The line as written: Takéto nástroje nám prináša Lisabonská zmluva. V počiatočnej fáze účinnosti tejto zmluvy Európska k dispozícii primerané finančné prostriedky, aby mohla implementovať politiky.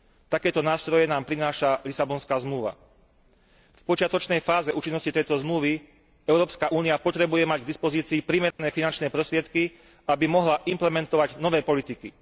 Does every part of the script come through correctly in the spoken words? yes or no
no